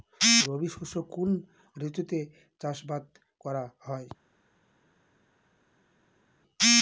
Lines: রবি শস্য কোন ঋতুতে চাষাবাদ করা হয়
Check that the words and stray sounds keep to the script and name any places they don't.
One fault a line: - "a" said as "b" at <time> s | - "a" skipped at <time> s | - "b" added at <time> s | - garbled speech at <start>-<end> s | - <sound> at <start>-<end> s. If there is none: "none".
none